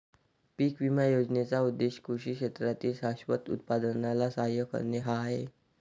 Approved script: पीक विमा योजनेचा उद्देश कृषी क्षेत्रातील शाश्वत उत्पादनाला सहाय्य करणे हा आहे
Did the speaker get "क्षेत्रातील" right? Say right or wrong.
right